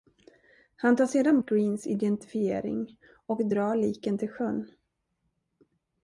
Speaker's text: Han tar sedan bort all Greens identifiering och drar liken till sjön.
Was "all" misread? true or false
true